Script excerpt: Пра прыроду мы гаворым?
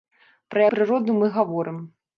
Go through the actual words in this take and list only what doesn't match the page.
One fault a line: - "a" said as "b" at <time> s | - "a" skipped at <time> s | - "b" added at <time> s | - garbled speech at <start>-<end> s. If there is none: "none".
none